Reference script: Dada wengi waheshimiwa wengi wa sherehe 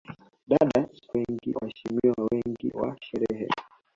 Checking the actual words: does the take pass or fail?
pass